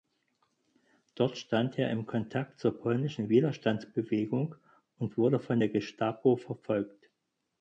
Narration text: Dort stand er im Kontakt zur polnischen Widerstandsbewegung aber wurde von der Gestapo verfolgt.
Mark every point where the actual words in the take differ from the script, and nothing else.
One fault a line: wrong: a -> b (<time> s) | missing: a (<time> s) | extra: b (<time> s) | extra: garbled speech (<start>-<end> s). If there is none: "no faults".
wrong: aber -> und (5.0 s)